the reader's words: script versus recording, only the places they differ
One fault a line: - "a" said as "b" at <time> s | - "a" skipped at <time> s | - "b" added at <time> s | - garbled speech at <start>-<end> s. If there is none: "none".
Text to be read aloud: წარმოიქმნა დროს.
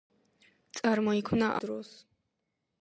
none